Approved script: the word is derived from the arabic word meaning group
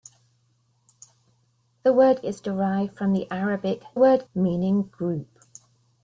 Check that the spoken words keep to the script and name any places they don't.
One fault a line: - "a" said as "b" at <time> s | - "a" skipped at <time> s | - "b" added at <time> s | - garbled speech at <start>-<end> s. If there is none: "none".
none